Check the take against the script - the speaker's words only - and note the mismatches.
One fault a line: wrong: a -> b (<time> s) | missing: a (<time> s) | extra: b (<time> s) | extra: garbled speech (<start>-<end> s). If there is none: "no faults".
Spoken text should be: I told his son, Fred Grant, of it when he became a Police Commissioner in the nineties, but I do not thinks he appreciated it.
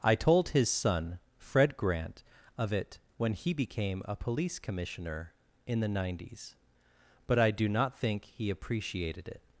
wrong: thinks -> think (8.0 s)